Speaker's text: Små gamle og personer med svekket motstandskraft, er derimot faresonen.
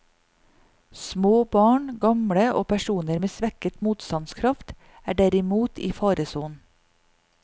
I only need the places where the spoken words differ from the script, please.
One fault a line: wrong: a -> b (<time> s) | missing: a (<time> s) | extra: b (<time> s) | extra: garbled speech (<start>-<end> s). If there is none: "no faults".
extra: barn (1.6 s)
extra: i (5.8 s)